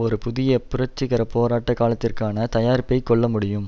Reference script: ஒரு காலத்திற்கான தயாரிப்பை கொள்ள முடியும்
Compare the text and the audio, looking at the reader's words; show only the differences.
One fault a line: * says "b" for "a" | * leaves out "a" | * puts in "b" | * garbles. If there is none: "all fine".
* puts in "புதிய புரட்சிகர போராட்ட"